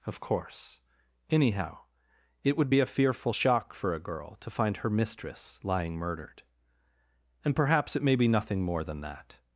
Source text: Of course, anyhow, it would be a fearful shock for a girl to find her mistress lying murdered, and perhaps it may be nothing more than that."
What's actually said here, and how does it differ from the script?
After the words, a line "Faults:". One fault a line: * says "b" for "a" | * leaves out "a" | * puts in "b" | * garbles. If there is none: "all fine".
Of course, anyhow, it would be a fearful shock for a girl to find her mistress lying murdered, and perhaps it may be nothing more than that."
Faults:
all fine